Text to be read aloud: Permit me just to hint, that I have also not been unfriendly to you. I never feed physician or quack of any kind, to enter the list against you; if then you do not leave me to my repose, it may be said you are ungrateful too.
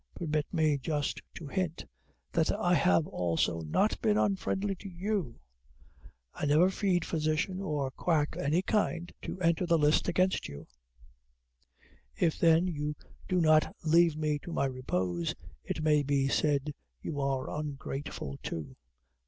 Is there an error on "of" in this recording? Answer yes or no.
yes